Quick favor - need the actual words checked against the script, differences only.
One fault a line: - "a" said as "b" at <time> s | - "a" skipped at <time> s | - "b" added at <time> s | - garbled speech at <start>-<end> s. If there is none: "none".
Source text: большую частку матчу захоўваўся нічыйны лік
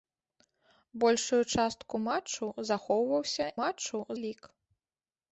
- "нічыйны" said as "матчу" at 3.6 s